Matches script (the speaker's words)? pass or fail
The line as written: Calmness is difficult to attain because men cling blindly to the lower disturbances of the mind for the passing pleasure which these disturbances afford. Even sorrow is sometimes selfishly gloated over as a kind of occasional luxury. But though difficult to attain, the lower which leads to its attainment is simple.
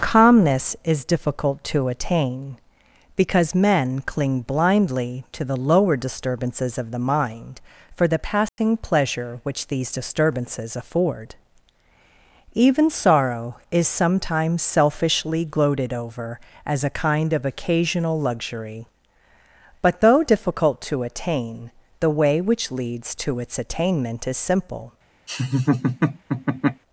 fail